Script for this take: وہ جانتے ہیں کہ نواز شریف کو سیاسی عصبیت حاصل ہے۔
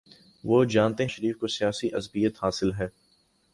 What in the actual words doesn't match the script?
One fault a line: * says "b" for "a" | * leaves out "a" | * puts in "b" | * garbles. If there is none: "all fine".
* leaves out "ہیں کہ نواز"